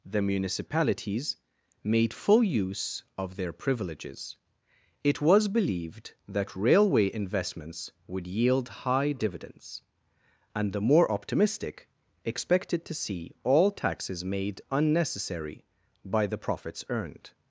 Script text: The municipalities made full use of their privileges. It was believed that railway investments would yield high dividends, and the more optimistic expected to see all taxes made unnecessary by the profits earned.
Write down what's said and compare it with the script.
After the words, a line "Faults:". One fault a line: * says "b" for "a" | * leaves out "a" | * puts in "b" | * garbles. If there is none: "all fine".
The municipalities made full use of their privileges. It was believed that railway investments would yield high dividends, and the more optimistic expected to see all taxes made unnecessary by the profits earned.
Faults:
all fine